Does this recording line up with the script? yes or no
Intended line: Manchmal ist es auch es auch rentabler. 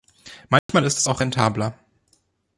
no